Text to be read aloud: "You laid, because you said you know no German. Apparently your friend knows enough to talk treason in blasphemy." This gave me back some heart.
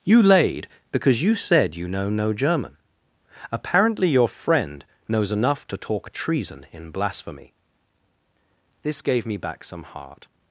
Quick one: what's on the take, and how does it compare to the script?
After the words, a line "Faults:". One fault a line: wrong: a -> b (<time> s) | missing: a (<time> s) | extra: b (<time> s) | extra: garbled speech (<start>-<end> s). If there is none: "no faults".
"You laid, because you said you know no German. Apparently your friend knows enough to talk treason in blasphemy." This gave me back some heart.
Faults:
no faults